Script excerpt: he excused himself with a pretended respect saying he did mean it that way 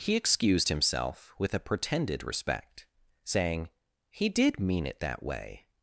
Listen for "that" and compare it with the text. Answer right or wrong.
right